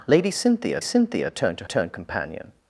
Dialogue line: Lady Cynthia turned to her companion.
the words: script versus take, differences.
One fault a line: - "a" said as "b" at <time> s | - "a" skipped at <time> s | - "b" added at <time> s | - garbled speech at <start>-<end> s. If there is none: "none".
- "Cynthia" added at 0.8 s
- "her" said as "turned" at 1.6 s